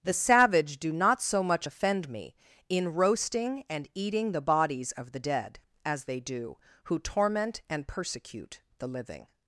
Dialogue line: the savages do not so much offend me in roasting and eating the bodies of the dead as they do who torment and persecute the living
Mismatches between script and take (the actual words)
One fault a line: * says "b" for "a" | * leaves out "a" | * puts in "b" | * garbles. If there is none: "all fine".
* says "savage" for "savages"